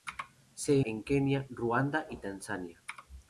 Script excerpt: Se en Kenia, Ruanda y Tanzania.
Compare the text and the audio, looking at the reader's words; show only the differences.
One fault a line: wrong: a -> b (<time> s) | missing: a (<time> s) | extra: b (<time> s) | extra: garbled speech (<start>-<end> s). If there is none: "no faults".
no faults